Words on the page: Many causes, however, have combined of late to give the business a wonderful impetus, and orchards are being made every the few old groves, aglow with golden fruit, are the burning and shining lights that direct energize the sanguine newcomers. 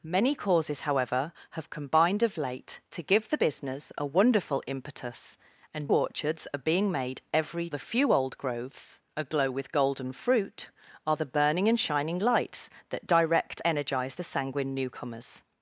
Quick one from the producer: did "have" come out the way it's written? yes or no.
yes